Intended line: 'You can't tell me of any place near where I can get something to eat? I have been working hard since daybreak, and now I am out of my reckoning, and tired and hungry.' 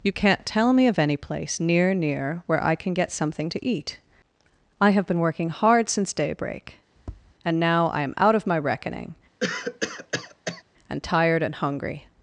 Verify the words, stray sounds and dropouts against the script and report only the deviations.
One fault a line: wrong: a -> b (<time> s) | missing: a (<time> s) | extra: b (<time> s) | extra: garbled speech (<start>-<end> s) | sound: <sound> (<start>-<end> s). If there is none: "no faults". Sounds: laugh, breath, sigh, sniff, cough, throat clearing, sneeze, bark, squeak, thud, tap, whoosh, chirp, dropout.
extra: near (1.9 s)
sound: tap (7.0-7.3 s)
sound: cough (9.4-10.6 s)